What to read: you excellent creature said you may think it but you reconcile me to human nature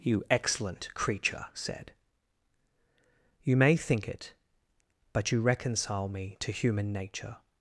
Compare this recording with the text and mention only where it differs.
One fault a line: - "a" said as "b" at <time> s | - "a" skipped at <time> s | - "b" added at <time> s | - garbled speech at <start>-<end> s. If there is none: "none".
none